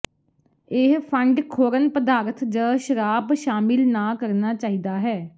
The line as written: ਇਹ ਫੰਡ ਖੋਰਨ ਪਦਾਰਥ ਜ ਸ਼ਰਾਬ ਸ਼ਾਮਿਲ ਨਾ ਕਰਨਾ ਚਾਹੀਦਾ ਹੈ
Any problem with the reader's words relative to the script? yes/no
no